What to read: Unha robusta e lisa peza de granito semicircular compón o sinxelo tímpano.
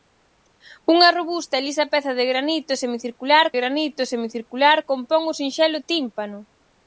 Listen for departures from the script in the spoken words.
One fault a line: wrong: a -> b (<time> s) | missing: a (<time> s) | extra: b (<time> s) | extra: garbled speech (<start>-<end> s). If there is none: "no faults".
extra: granito semicircular (3.6 s)